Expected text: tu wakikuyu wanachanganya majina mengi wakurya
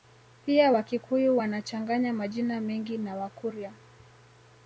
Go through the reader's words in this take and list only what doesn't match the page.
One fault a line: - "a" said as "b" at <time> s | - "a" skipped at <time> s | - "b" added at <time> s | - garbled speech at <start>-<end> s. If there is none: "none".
- "tu" said as "pia" at 0.5 s
- "na" added at 3.0 s